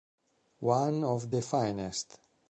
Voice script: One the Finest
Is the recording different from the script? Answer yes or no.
yes